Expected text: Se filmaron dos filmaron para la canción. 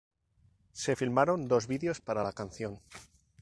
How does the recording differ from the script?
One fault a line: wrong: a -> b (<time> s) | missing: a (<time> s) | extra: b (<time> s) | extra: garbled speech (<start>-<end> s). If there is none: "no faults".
wrong: filmaron -> vídeos (1.7 s)